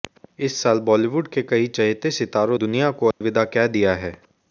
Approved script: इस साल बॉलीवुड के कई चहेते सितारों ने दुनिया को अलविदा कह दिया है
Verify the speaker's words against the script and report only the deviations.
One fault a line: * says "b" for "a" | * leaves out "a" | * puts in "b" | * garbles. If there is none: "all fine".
* leaves out "ने"